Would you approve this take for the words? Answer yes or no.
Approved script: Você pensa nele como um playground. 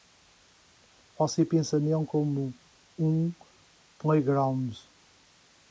yes